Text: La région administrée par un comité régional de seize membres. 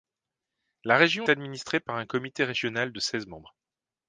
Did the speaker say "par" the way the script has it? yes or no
yes